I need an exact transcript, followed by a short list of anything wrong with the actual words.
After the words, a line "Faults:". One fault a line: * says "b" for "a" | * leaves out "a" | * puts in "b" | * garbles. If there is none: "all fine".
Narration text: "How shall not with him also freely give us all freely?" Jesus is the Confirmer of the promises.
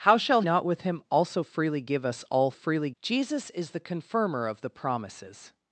"How shall not with him also freely give us all freely?" Jesus is the Confirmer of the promises.
Faults:
all fine